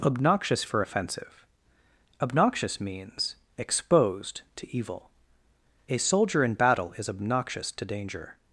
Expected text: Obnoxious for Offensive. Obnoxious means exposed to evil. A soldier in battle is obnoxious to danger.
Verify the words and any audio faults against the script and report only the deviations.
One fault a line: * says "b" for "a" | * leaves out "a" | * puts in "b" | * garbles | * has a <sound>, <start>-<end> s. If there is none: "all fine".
all fine